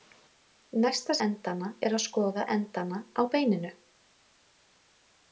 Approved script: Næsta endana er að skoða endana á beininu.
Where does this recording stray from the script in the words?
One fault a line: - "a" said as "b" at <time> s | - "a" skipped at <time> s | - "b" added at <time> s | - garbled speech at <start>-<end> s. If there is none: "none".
none